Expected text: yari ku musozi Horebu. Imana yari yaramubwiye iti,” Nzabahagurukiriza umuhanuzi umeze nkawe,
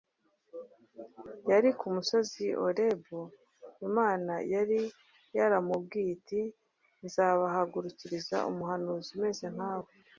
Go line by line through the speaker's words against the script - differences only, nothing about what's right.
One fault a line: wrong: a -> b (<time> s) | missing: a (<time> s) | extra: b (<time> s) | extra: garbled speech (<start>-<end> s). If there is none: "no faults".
no faults